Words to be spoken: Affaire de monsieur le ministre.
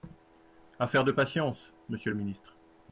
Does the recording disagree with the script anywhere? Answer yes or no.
yes